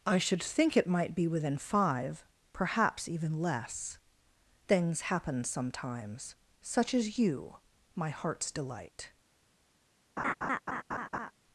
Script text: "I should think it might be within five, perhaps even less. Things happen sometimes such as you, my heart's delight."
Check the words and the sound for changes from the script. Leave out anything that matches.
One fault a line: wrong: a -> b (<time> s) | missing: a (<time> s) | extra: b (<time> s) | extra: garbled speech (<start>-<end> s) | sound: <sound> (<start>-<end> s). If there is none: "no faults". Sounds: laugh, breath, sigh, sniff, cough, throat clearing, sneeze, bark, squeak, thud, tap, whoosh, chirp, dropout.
sound: laugh (10.2-11.3 s)